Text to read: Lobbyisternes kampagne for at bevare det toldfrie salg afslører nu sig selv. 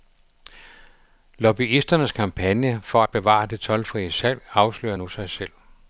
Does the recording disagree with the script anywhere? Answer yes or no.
no